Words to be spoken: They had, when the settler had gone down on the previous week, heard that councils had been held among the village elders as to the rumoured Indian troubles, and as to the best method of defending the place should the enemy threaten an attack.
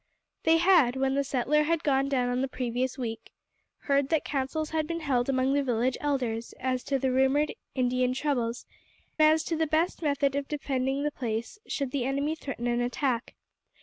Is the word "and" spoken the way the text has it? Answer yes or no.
no